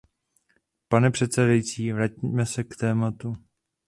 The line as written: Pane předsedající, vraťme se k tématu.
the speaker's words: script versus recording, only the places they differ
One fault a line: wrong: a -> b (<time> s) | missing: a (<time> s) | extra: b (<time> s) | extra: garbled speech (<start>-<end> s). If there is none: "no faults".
no faults